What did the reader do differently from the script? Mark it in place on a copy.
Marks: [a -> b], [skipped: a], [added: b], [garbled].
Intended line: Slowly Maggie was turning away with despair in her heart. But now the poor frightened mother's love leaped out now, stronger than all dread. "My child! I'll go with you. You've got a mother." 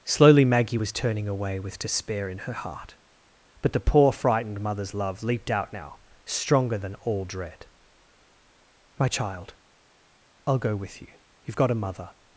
Slowly Maggie was turning away with despair in her heart. But [skipped: now] the poor frightened mother's love leaped out now, stronger than all dread. "My child! I'll go with you. You've got a mother."